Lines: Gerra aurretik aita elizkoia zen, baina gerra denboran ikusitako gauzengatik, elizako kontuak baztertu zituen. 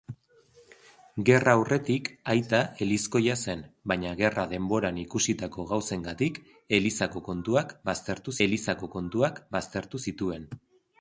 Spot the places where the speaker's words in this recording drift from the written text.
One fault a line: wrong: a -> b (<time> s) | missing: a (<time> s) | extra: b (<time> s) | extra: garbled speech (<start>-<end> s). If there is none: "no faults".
extra: elizako kontuak baztertu (8.5 s)